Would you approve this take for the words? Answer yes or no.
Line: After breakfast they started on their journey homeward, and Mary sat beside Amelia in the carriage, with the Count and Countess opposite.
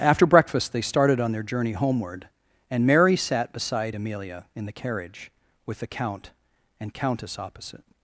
yes